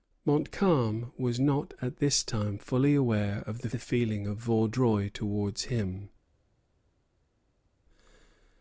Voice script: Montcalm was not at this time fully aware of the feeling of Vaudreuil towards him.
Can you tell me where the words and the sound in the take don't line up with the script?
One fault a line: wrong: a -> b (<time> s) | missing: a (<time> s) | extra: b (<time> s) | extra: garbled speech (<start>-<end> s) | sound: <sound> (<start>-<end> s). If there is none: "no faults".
extra: the (3.7 s)